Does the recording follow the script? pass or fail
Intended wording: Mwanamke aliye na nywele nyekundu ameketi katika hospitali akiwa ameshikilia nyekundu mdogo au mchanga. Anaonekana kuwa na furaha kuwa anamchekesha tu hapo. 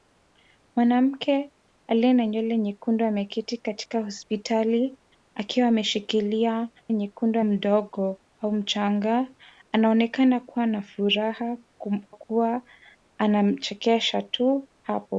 pass